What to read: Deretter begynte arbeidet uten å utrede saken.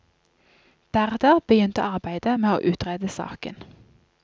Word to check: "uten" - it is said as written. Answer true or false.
false